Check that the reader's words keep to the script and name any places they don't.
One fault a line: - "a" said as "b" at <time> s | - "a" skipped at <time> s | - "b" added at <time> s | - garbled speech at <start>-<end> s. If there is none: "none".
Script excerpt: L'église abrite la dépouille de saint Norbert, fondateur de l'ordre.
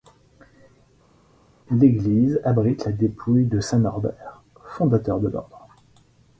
none